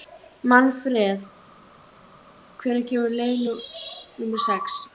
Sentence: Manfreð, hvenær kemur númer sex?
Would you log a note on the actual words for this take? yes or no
yes